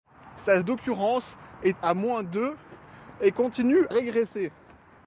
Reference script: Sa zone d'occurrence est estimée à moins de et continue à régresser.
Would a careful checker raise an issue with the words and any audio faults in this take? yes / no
yes